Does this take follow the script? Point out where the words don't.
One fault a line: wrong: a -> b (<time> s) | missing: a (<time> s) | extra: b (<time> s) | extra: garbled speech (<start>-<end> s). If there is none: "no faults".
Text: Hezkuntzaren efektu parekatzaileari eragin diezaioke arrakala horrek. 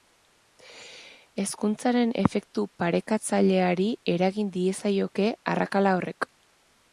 no faults